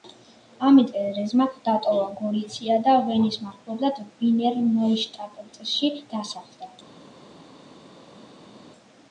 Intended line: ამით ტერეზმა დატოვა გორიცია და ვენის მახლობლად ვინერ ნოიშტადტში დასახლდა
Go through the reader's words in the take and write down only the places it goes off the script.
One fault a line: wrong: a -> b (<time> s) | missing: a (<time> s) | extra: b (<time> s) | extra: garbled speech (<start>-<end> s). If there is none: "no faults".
no faults